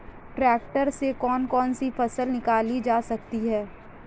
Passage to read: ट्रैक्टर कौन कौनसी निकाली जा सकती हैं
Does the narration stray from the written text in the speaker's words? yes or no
yes